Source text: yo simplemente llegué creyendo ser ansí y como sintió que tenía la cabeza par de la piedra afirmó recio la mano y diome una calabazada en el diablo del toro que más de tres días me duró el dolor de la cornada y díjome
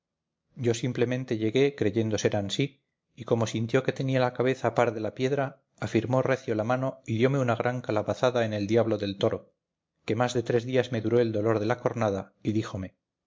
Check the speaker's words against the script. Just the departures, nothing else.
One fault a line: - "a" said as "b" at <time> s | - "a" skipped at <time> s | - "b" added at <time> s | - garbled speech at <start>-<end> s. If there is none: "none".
- "gran" added at 7.5 s